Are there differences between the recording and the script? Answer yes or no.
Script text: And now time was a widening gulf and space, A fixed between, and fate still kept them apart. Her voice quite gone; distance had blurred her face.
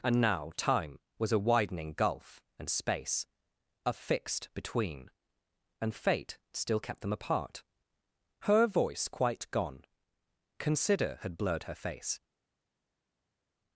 yes